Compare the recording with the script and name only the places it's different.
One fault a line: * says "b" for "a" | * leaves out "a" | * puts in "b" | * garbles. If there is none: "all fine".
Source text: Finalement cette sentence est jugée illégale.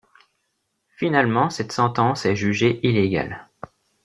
all fine